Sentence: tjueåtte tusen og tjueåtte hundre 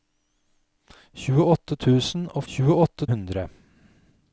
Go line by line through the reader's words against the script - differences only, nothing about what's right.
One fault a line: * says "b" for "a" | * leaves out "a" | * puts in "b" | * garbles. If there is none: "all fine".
all fine